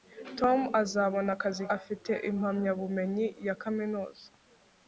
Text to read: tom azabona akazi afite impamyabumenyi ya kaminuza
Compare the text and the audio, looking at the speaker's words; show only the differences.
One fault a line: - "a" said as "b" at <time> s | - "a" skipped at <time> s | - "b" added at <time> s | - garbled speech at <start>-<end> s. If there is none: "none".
none